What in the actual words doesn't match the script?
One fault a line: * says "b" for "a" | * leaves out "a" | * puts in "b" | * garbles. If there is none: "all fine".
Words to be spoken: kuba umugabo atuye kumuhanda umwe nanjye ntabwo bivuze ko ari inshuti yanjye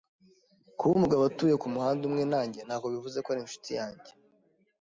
all fine